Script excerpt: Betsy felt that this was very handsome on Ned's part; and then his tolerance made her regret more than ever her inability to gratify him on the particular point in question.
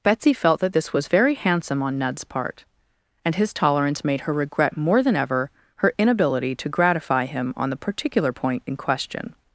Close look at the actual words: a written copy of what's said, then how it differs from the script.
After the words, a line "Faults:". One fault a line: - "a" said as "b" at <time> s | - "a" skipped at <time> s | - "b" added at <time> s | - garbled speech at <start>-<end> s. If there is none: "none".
Betsy felt that this was very handsome on Ned's part; and his tolerance made her regret more than ever her inability to gratify him on the particular point in question.
Faults:
- "then" skipped at 3.4 s